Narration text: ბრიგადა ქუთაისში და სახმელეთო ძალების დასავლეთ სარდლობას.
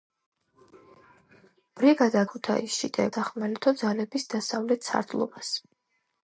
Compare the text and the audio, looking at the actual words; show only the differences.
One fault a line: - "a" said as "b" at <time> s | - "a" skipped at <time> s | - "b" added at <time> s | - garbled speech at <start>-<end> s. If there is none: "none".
none